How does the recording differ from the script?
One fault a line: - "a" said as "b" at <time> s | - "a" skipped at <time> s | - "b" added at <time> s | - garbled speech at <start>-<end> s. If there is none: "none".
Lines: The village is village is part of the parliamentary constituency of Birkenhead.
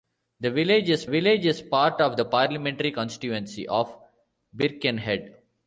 none